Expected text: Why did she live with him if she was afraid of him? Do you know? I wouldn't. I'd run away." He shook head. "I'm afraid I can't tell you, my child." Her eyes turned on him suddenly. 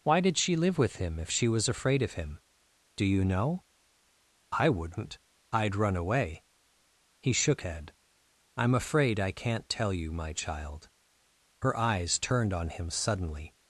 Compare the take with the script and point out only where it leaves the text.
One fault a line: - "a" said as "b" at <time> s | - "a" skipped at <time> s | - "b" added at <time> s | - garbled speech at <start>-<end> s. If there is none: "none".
none